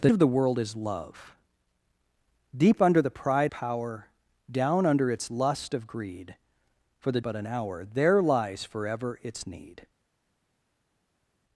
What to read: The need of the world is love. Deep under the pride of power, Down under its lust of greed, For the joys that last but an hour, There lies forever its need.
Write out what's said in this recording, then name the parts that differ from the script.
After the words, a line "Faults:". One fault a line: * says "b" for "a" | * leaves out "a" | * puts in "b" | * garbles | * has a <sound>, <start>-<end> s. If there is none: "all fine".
The of the world is love. Deep under the pride power, Down under its lust of greed, For the but an hour, There lies forever its need.
Faults:
* leaves out "need"
* leaves out "of"
* leaves out "joys that last"